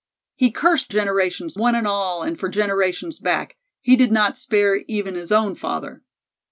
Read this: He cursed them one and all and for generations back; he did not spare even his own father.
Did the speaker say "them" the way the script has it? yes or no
no